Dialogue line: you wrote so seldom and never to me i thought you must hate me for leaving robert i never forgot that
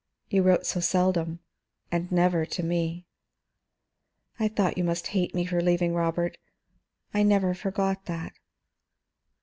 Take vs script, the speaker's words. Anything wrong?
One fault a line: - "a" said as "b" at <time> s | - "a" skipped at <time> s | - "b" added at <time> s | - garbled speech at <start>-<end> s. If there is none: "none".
none